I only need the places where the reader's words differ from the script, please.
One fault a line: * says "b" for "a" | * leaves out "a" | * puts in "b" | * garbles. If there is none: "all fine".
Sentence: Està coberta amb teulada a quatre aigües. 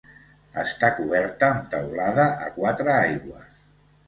all fine